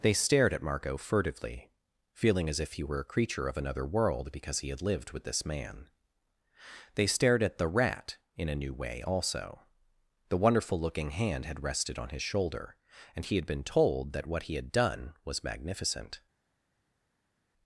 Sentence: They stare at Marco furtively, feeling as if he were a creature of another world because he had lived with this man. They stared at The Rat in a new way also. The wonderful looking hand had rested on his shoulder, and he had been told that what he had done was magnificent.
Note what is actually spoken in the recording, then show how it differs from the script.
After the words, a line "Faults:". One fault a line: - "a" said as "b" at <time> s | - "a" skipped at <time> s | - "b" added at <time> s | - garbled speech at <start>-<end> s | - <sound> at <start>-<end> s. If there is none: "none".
They stared at Marco furtively, feeling as if he were a creature of another world because he had lived with this man. They stared at The Rat in a new way also. The wonderful looking hand had rested on his shoulder, and he had been told that what he had done was magnificent.
Faults:
- "stare" said as "stared" at 0.1 s